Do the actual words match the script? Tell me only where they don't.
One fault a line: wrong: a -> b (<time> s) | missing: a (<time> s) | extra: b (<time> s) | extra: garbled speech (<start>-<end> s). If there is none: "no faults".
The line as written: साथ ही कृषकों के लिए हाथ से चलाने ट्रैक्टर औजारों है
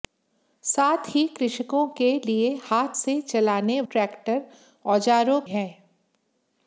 no faults